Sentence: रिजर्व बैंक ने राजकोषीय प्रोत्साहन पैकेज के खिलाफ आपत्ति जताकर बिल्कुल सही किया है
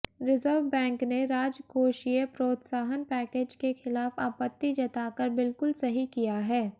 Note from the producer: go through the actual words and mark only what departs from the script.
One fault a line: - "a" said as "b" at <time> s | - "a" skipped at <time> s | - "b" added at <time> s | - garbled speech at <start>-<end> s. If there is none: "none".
none